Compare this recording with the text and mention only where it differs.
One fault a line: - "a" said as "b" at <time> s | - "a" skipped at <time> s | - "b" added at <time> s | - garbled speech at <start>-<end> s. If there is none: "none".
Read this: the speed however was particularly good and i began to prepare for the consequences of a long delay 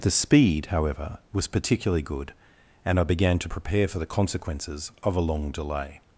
none